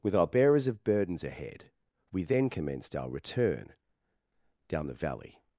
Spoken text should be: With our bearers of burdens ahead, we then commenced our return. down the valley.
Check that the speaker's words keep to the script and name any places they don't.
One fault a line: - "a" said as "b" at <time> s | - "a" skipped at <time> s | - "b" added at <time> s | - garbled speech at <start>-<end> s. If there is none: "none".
none